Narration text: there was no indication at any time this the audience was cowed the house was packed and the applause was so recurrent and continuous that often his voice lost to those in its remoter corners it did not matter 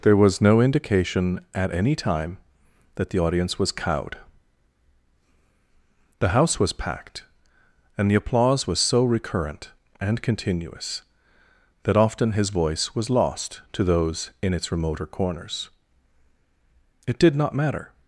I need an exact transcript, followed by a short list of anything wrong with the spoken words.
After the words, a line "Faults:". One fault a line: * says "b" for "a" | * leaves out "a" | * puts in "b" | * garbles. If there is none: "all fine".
there was no indication at any time that the audience was cowed the house was packed and the applause was so recurrent and continuous that often his voice was lost to those in its remoter corners it did not matter
Faults:
* says "that" for "this"
* puts in "was"